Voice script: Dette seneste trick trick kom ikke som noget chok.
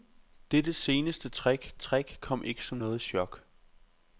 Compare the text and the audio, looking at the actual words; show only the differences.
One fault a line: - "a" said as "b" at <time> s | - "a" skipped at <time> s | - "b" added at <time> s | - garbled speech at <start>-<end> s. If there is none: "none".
none